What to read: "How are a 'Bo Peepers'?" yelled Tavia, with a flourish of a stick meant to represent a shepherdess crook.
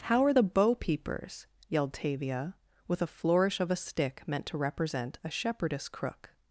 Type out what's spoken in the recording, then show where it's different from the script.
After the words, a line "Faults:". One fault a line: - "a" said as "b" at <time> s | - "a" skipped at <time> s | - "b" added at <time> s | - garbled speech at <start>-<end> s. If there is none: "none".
"How are the 'Bo Peepers'?" yelled Tavia, with a flourish of a stick meant to represent a shepherdess crook.
Faults:
- "a" said as "the" at 0.3 s